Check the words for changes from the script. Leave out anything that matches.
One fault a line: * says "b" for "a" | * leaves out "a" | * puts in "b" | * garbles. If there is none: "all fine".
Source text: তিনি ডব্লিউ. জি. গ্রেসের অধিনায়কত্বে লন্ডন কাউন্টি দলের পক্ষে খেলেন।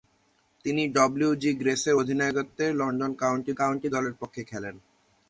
* puts in "কাউন্টি"